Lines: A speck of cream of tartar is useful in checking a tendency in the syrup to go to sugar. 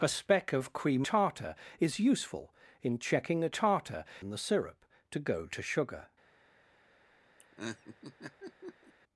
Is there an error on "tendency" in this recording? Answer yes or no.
yes